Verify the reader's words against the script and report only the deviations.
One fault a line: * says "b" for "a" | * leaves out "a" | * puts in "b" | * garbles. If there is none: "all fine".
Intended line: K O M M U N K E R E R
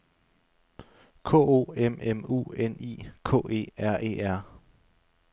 * puts in "I"